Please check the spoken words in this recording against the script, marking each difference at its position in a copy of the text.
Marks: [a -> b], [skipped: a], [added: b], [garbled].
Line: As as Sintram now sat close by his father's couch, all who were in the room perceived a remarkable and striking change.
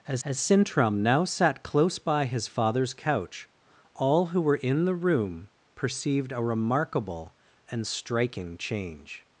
As as Sintram now sat close by his father's couch, all who were in the room perceived a remarkable and striking change.